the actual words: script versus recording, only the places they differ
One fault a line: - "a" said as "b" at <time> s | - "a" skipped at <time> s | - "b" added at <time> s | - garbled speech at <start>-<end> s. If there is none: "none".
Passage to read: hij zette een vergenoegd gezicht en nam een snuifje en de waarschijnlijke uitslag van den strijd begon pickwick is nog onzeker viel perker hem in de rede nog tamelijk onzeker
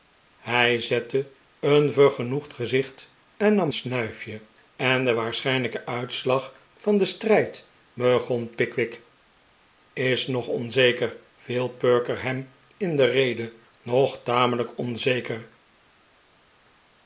- "een" skipped at 3.7 s